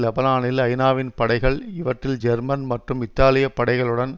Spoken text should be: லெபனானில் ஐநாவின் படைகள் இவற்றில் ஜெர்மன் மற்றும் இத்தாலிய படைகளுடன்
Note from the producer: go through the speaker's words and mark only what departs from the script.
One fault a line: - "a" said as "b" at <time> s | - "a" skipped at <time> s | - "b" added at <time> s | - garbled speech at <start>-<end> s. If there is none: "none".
none